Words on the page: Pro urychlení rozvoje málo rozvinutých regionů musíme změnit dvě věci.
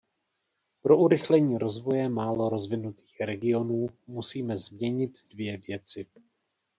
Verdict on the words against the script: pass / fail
pass